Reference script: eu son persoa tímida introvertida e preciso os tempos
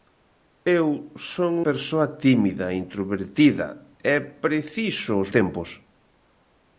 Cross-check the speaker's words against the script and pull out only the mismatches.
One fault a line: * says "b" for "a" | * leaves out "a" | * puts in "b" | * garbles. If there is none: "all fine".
all fine